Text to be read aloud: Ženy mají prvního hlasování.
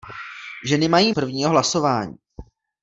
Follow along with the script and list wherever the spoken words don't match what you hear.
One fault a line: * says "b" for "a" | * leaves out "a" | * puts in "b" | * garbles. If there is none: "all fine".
all fine